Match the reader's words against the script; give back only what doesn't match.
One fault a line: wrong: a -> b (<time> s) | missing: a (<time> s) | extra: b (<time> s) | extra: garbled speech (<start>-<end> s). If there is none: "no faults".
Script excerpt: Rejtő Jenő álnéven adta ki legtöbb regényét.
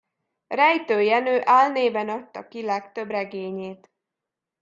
no faults